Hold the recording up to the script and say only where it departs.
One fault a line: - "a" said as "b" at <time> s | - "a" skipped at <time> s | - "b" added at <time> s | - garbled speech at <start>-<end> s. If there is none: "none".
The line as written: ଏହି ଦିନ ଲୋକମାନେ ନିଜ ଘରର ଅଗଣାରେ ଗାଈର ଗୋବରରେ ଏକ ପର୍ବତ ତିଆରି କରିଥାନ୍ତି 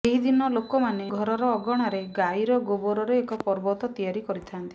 - "ନିଜ" skipped at 1.1 s